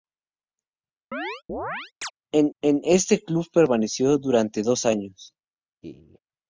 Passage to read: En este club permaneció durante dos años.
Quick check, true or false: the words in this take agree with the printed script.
false